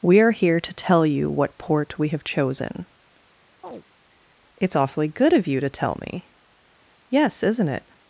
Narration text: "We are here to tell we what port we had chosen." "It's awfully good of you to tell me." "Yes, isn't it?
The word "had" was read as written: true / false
false